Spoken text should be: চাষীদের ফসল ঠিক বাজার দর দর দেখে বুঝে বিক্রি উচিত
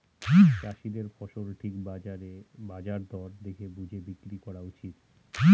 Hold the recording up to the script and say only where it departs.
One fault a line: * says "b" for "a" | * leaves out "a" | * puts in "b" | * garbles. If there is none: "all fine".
* leaves out "দর"
* puts in "করা"